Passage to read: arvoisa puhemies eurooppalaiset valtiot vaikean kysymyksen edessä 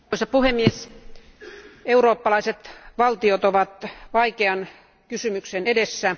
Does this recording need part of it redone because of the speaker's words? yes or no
yes